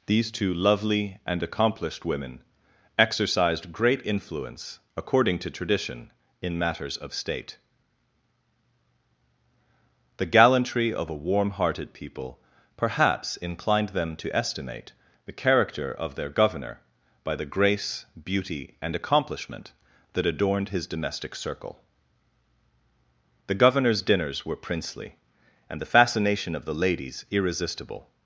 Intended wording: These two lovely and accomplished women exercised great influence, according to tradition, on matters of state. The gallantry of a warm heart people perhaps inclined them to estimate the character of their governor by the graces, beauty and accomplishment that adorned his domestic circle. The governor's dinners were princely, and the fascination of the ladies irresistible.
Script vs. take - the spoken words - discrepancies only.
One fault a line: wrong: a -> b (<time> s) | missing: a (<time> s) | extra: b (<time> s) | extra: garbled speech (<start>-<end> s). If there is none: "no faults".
wrong: on -> in (6.4 s)
wrong: heart -> hearted (11.5 s)
wrong: graces -> grace (17.4 s)